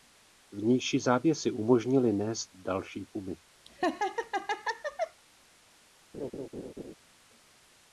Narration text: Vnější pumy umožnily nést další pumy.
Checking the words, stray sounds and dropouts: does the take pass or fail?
fail